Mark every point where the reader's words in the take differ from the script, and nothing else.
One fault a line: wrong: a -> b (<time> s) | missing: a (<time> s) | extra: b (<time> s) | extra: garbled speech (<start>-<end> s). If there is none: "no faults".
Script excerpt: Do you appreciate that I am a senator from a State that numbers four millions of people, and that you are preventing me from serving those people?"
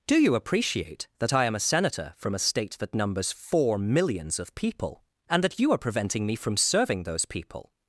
no faults